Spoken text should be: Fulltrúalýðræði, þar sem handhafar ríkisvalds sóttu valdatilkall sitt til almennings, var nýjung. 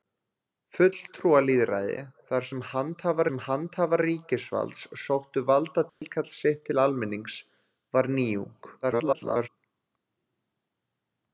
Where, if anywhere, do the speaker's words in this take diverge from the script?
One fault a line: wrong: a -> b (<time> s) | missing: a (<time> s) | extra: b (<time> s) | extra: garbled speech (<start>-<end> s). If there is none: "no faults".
extra: sem handhafar (3.3 s)
extra: garbled speech (8.8-9.5 s)